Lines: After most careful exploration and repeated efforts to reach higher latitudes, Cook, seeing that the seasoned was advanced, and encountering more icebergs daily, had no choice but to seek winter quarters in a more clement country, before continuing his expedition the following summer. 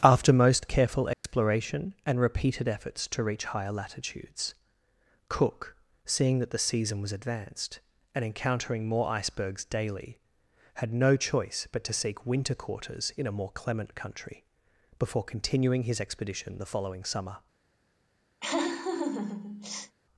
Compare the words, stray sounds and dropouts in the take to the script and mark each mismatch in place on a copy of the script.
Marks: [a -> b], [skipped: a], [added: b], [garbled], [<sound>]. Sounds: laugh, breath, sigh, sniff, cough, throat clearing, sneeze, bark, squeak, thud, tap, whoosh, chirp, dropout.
After most careful exploration [dropout] and repeated efforts to reach higher latitudes, Cook, seeing that the [seasoned -> season] was advanced, and encountering more icebergs daily, had no choice but to seek winter quarters in a more clement country, before continuing his expedition the following summer. [laugh]